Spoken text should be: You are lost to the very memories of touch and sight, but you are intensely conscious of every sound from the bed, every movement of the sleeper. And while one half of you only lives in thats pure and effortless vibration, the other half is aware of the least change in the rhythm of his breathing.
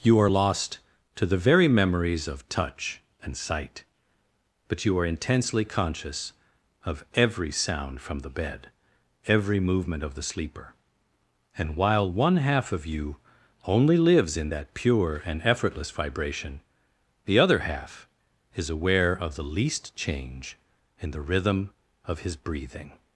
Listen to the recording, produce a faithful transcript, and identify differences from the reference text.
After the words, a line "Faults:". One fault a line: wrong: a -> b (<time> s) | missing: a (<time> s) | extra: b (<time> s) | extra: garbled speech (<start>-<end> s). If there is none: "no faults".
You are lost to the very memories of touch and sight, but you are intensely conscious of every sound from the bed, every movement of the sleeper. And while one half of you only lives in that pure and effortless vibration, the other half is aware of the least change in the rhythm of his breathing.
Faults:
wrong: thats -> that (14.5 s)